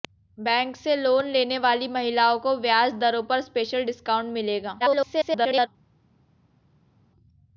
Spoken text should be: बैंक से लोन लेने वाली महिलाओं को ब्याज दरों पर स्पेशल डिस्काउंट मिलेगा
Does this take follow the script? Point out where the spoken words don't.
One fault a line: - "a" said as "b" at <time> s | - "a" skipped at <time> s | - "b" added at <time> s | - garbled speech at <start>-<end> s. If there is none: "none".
- garbled speech at 4.8-5.7 s